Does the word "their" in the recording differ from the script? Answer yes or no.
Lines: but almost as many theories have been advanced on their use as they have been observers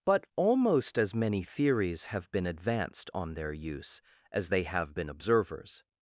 no